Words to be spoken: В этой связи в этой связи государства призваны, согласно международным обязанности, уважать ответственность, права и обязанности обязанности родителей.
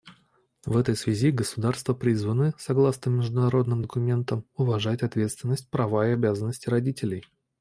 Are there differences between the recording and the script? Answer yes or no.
yes